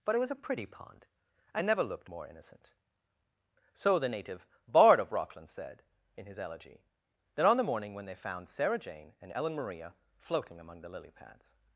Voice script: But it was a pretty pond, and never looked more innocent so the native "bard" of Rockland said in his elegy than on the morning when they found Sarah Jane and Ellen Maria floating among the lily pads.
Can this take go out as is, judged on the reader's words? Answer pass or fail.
fail